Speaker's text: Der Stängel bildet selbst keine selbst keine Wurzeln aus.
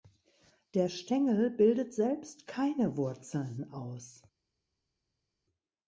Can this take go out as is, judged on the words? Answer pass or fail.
fail